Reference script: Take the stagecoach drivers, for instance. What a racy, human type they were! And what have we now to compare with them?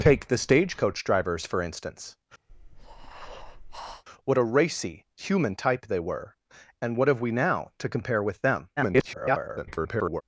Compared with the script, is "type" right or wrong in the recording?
right